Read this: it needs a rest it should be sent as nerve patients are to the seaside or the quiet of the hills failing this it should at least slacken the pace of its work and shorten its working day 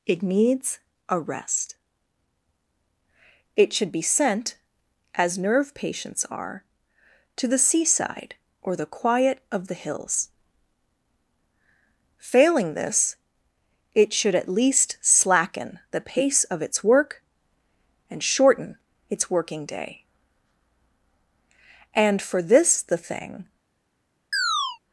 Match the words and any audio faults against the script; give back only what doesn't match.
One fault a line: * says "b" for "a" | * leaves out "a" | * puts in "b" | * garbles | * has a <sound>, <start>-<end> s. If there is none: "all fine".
* puts in "and for this the thing"
* has a chirp, 24.3-24.8 s